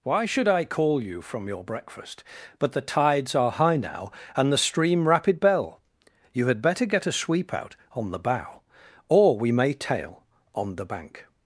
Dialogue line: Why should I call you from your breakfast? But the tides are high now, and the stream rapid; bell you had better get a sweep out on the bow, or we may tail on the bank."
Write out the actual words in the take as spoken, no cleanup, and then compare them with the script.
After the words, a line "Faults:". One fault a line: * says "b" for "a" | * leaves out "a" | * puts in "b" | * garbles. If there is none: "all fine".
Why should I call you from your breakfast? But the tides are high now, and the stream rapid; bell you had better get a sweep out on the bow, or we may tail on the bank."
Faults:
all fine